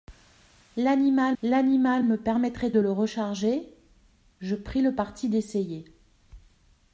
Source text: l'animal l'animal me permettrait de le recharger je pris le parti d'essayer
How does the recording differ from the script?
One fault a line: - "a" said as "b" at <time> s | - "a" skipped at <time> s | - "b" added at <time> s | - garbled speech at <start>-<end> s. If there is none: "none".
none